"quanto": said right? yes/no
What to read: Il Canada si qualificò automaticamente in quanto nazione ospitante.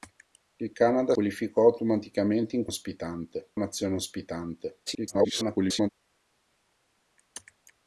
no